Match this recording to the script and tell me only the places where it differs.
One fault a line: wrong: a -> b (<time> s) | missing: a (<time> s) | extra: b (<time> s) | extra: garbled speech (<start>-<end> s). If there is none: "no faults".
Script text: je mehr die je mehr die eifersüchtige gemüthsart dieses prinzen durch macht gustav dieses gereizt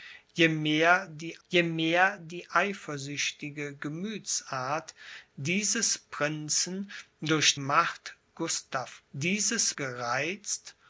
no faults